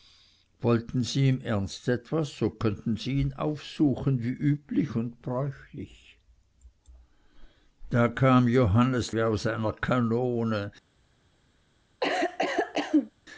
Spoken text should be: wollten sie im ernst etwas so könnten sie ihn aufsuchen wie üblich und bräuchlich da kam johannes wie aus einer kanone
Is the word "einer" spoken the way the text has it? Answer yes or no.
yes